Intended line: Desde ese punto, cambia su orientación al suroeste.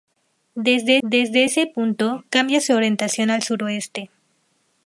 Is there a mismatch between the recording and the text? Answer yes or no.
yes